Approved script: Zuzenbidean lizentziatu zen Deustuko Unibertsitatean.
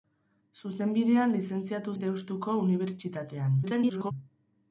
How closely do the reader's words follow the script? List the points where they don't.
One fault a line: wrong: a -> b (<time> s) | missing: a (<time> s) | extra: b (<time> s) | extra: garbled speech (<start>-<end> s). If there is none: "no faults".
missing: zen (1.9 s)
extra: garbled speech (3.6-4.1 s)